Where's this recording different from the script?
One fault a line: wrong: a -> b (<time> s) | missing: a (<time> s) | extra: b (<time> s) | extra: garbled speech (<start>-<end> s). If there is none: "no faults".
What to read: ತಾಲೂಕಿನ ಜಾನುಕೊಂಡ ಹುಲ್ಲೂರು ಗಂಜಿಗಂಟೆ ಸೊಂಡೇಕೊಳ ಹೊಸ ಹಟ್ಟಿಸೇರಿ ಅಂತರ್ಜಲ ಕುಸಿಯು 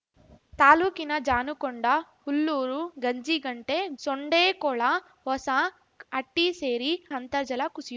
no faults